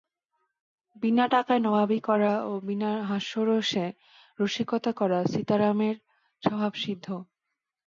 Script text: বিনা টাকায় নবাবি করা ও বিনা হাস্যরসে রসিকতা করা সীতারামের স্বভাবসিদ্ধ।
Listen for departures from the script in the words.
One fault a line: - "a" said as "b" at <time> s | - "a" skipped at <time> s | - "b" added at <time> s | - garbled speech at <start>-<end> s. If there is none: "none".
none